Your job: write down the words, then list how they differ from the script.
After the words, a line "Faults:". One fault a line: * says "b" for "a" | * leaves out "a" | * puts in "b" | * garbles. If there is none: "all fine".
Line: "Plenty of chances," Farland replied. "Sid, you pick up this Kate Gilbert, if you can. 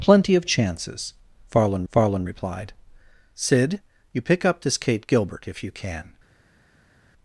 "Plenty of chances," Farland Farland replied. "Sid, you pick up this Kate Gilbert, if you can.
Faults:
* puts in "Farland"